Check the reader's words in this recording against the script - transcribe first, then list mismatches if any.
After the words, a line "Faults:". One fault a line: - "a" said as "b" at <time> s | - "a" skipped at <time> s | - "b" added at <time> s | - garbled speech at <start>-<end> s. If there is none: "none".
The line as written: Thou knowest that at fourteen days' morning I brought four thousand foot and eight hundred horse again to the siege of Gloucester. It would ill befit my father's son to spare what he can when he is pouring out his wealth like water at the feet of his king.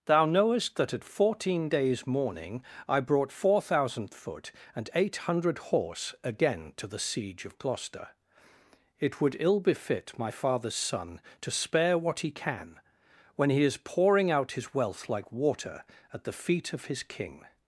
Thou knowest that at fourteen days' morning I brought four thousand foot and eight hundred horse again to the siege of Gloucester. It would ill befit my father's son to spare what he can when he is pouring out his wealth like water at the feet of his king.
Faults:
none